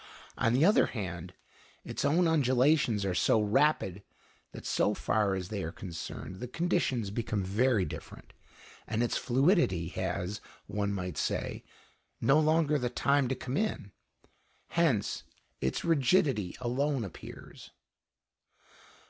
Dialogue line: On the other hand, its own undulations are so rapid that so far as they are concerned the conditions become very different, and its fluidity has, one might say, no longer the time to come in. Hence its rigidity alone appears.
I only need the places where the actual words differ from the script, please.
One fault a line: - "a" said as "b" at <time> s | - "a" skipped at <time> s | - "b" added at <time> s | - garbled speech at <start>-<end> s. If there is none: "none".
none